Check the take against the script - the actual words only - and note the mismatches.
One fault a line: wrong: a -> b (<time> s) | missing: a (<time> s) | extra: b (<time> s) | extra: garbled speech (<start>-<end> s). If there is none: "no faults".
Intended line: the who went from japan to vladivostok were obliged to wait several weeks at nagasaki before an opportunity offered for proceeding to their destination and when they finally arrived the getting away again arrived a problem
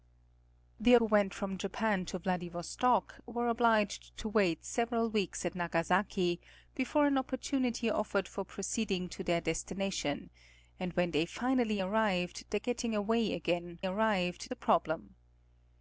no faults